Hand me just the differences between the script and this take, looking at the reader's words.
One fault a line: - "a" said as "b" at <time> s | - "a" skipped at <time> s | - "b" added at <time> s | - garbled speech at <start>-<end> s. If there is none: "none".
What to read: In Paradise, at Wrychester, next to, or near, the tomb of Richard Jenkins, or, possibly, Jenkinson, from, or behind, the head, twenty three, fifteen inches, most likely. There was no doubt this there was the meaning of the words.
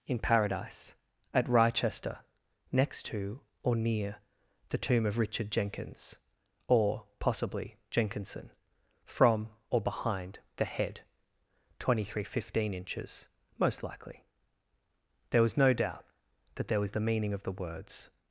- "this" said as "that" at 16.6 s